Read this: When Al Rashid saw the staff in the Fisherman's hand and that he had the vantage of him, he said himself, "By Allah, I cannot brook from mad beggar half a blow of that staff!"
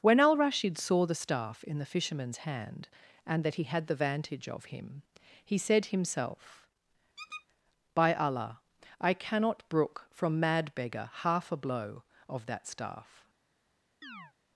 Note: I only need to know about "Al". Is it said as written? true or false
true